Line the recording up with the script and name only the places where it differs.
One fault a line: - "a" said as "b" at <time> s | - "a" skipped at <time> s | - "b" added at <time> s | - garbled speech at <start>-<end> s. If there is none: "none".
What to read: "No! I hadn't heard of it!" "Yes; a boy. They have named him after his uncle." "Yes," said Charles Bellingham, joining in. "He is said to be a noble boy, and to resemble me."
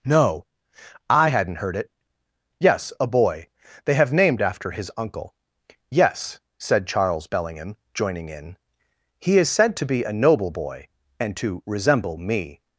- "of" skipped at 1.7 s
- "him" skipped at 4.4 s